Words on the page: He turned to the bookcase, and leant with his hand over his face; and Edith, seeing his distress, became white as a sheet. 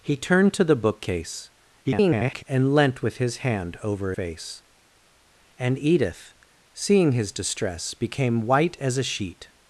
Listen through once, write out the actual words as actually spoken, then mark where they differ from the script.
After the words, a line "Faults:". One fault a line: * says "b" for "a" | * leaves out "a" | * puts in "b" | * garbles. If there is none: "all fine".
He turned to the bookcase, [garbled] and leant with his hand over face; and Edith, seeing his distress, became white as a sheet.
Faults:
* garbles
* leaves out "his"